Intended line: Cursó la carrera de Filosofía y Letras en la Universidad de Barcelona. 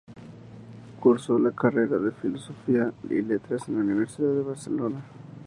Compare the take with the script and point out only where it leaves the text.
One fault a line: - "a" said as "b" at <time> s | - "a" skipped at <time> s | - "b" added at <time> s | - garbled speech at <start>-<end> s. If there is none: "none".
none